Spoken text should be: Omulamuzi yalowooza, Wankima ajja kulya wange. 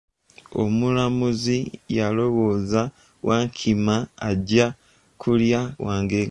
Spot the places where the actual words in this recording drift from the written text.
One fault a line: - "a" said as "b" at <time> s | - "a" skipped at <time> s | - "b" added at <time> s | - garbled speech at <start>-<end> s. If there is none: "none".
none